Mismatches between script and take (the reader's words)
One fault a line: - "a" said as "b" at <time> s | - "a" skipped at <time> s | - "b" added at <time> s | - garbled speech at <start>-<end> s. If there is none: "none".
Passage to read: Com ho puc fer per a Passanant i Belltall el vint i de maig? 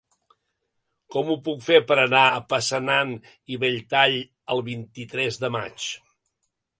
- "anar" added at 2.0 s
- "tres" added at 5.2 s